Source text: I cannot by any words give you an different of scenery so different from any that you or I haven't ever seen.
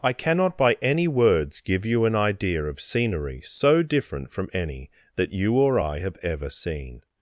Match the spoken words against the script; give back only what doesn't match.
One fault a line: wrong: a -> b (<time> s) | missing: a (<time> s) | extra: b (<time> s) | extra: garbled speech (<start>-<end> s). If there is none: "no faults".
wrong: different -> idea (2.1 s)
wrong: haven't -> have (6.0 s)